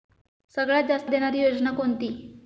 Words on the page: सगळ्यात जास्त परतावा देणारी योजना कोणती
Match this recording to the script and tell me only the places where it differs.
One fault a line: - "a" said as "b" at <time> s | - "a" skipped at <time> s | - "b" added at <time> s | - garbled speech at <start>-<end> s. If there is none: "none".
- "परतावा" skipped at 1.1 s